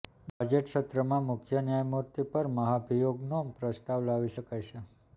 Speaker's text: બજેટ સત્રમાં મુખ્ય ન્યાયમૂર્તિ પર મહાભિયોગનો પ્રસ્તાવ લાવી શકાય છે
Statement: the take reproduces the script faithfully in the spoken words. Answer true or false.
true